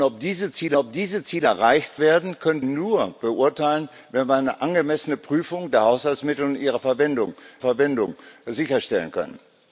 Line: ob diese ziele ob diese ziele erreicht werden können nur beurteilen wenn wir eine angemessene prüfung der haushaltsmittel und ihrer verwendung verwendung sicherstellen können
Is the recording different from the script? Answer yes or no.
no